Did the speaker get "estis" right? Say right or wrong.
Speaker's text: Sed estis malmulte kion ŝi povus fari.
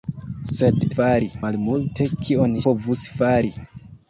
wrong